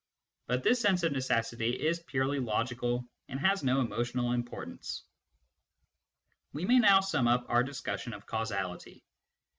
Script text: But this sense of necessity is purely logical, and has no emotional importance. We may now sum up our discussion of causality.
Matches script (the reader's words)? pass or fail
pass